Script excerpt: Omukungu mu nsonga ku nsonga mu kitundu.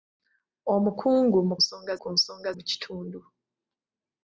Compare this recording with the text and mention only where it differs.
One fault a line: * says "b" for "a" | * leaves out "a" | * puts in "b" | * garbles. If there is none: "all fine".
all fine